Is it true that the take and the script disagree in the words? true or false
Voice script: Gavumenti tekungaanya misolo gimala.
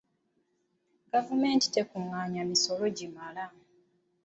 false